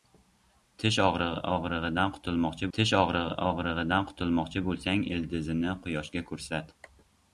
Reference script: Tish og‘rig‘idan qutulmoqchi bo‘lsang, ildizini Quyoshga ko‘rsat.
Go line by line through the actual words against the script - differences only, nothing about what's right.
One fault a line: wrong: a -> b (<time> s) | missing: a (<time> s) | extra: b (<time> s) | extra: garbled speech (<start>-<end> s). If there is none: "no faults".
extra: tish og‘rig‘idan qutulmoqchi (2.8 s)